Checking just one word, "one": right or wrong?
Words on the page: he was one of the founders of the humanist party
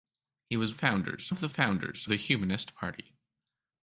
wrong